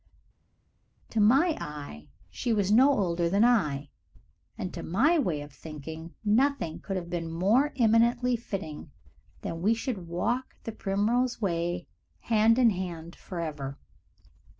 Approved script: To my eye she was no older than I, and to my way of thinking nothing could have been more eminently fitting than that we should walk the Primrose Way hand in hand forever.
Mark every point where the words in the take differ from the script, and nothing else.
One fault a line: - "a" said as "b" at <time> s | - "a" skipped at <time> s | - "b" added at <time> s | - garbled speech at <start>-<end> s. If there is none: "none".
none